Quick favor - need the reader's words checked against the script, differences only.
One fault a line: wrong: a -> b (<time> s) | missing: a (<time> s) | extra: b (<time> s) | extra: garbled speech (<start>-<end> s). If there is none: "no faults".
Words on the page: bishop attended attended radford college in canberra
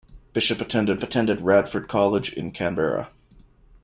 no faults